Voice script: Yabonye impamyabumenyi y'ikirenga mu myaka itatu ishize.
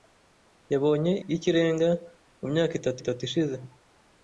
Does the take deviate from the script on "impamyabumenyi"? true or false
true